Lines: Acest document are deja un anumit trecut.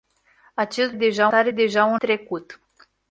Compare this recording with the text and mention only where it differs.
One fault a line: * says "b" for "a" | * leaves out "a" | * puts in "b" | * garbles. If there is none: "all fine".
* says "deja" for "document"
* leaves out "anumit"